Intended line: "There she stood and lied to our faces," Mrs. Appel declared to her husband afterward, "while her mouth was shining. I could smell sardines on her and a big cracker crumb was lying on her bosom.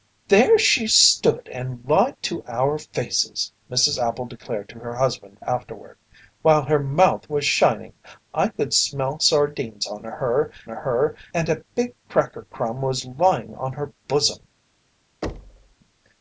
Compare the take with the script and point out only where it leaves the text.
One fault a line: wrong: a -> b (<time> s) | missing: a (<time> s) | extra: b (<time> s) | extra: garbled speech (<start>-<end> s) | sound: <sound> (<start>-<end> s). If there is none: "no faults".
extra: her (10.7 s)
sound: thud (15.2-15.8 s)